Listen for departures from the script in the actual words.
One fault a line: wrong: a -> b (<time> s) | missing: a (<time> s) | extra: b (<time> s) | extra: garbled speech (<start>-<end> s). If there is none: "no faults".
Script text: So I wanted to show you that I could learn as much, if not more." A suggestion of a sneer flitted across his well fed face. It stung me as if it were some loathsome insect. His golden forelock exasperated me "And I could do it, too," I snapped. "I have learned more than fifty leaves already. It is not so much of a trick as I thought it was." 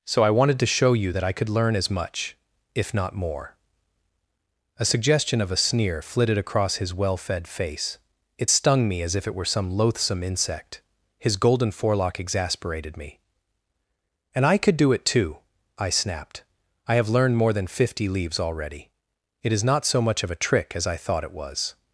no faults